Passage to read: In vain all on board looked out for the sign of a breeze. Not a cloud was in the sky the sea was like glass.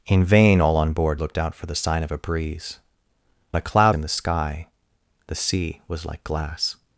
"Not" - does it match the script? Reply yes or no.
no